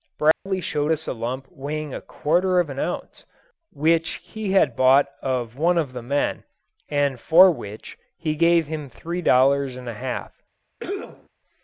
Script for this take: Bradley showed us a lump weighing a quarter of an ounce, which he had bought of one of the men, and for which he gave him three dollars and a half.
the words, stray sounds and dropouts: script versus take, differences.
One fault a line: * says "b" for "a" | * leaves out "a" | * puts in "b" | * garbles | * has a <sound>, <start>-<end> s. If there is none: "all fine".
* has a dropout, 0.3-0.5 s
* has a cough, 10.8-11.3 s